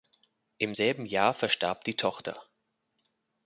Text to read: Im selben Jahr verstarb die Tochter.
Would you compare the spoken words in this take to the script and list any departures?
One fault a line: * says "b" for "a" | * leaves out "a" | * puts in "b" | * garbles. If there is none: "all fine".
all fine